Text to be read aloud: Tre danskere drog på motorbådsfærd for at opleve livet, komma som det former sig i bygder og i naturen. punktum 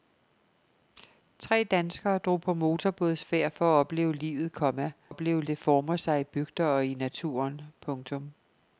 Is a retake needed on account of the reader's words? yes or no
yes